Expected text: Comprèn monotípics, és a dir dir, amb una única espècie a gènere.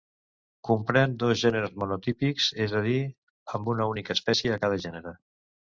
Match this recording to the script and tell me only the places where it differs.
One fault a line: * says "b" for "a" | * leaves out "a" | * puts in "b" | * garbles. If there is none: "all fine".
* puts in "dos gèneres"
* leaves out "dir"
* puts in "cada"